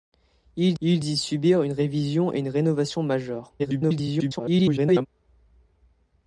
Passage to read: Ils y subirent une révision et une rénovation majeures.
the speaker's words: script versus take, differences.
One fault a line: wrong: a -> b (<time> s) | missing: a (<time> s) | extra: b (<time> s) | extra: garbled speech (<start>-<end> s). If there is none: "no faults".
extra: ils (0.8 s)
extra: garbled speech (3.6-5.1 s)